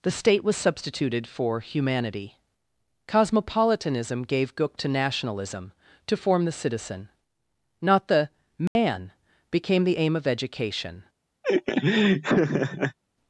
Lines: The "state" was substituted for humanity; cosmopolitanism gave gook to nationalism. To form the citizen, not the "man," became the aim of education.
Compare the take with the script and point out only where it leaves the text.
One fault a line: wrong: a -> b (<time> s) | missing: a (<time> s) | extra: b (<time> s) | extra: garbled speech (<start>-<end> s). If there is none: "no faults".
no faults